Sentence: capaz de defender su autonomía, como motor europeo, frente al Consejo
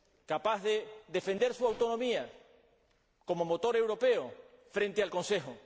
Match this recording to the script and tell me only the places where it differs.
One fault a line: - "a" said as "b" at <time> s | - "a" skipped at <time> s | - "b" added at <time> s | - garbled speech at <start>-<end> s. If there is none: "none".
none